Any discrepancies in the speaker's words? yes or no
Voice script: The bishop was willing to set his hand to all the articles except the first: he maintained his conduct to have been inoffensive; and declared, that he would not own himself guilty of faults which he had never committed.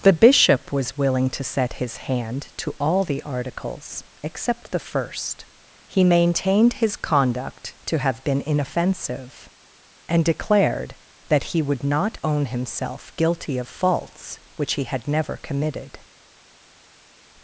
no